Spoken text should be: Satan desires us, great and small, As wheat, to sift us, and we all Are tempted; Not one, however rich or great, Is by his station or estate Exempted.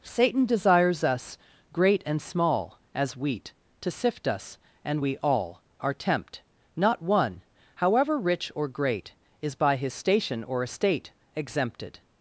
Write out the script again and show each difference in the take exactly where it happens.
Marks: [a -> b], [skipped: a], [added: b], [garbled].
Satan desires us, great and small, As wheat, to sift us, and we all Are [tempted; -> tempt] Not one, however rich or great, Is by his station or estate Exempted.